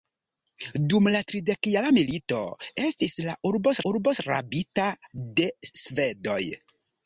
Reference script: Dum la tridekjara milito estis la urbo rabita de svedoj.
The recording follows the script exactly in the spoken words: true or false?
false